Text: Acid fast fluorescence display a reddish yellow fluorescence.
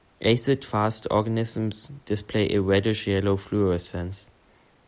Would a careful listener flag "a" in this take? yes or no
no